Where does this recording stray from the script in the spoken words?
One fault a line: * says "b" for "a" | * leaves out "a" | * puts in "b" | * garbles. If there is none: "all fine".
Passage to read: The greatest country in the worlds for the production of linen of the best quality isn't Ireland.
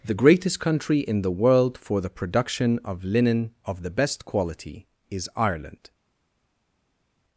* says "world" for "worlds"
* says "is" for "isn't"